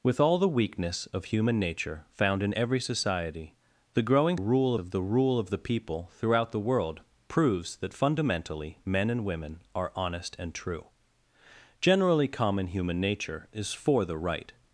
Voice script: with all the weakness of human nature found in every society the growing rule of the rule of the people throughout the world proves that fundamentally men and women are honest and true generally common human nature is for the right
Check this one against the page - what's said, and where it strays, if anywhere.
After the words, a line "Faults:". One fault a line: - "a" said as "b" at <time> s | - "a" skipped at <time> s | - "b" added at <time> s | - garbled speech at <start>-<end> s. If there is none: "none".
with all the weakness of human nature found in every society the growing rule of the rule of the people throughout the world proves that fundamentally men and women are honest and true generally common human nature is for the right
Faults:
none